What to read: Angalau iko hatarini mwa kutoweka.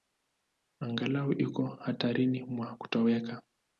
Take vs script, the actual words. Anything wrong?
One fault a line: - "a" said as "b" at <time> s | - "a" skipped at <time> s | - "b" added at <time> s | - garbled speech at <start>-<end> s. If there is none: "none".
none